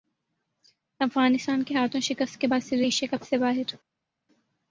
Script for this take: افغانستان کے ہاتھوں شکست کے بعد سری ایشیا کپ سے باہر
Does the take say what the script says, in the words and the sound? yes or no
yes